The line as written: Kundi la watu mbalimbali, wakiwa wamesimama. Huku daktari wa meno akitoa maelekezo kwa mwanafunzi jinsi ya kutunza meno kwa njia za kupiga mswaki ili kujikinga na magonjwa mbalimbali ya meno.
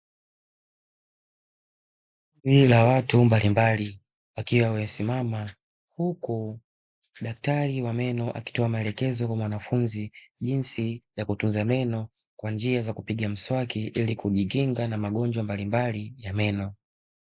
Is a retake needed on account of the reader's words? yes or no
no